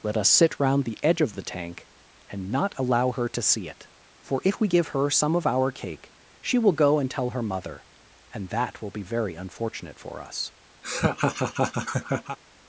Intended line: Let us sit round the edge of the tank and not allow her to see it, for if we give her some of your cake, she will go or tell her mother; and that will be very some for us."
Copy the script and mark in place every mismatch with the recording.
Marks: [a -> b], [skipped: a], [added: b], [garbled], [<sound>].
Let us sit round the edge of the tank and not allow her to see it, for if we give her some of [your -> our] cake, she will go [or -> and] tell her mother; and that will be very [some -> unfortunate] for us." [laugh]